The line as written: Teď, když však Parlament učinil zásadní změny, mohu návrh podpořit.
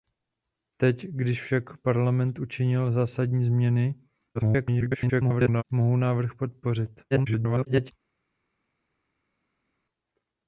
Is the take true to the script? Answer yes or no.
no